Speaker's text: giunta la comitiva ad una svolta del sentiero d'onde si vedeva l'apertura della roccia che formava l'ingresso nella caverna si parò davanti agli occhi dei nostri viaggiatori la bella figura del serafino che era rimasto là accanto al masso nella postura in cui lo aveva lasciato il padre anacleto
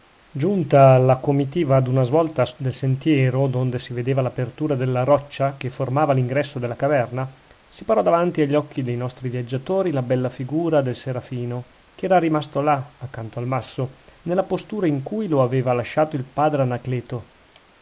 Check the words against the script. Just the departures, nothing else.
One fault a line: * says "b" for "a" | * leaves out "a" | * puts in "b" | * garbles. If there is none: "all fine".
* says "della" for "nella"